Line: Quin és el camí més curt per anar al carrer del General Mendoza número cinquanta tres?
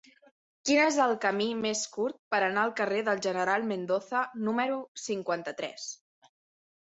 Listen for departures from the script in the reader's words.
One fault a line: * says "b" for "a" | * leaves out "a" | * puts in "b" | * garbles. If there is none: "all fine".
all fine